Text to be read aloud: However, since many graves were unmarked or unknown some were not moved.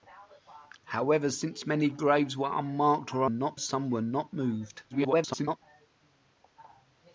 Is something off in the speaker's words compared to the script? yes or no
yes